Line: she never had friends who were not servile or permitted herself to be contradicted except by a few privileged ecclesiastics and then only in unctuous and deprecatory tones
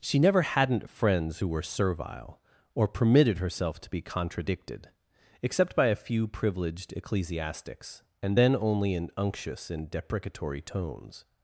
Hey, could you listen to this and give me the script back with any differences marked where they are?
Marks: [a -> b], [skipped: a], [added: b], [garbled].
she never [had -> hadn't] friends who were [skipped: not] servile or permitted herself to be contradicted except by a few privileged ecclesiastics and then only in unctuous and deprecatory tones